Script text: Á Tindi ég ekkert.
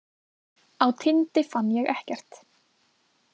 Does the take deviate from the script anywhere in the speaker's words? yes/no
yes